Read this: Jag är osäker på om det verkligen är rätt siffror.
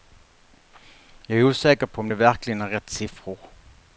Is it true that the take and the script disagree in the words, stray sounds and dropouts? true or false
false